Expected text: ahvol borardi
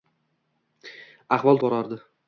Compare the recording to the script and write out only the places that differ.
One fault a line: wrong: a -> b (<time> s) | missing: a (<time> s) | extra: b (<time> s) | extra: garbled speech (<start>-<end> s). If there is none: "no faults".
no faults